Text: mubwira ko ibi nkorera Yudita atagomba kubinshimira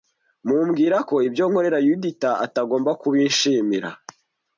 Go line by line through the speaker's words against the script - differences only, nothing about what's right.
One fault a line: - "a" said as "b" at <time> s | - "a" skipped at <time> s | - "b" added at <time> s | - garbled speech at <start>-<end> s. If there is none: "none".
- "ibi" said as "ibyo" at 1.3 s